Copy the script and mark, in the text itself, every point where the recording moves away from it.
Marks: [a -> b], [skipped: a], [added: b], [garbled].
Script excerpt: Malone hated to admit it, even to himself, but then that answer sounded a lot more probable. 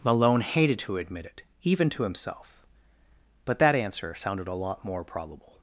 Malone hated to admit it, even to himself, but [skipped: then] that answer sounded a lot more probable.